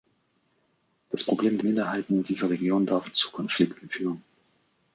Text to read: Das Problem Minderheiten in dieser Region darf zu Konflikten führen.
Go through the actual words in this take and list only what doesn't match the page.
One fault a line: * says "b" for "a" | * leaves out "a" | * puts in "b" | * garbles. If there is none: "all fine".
all fine